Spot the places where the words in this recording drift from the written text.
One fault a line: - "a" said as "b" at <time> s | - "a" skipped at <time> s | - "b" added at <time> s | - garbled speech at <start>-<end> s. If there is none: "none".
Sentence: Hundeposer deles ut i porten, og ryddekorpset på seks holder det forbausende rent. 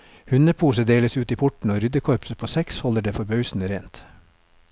none